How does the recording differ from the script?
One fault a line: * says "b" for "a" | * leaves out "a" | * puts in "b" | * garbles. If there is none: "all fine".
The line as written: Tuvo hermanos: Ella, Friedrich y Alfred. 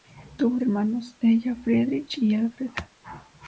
all fine